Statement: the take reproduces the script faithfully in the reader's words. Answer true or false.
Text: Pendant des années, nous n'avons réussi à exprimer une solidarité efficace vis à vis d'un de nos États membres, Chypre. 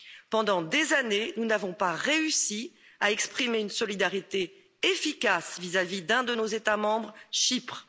false